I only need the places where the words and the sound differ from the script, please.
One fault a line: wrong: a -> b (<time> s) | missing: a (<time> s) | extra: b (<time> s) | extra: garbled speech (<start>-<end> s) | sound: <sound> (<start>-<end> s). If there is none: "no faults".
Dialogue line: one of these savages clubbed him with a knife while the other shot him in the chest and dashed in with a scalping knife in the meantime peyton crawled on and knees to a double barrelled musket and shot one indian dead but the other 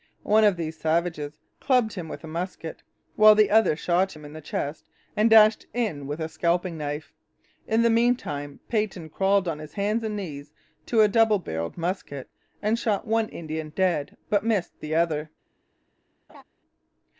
wrong: knife -> musket (2.3 s)
extra: his hands (9.6 s)
extra: missed (14.4 s)
sound: laugh (16.3-16.4 s)